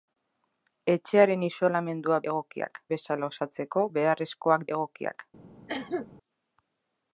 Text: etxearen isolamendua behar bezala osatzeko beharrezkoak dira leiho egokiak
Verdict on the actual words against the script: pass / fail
fail